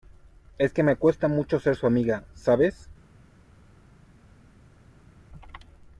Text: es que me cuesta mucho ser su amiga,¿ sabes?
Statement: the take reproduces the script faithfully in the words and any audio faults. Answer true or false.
true